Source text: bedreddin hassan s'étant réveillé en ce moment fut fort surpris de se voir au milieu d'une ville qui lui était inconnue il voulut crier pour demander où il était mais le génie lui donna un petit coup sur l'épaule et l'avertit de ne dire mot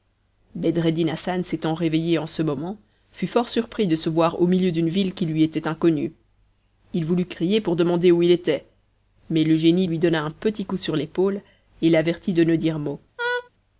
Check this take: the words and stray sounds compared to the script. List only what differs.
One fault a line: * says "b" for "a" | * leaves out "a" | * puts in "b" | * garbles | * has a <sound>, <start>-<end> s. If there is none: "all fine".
* has a laugh, 13.2-13.5 s